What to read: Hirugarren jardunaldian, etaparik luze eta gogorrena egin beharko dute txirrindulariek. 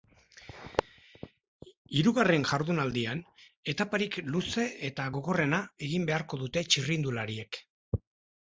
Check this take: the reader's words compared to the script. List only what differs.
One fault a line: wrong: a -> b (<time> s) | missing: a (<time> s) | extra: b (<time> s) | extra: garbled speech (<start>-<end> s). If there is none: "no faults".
no faults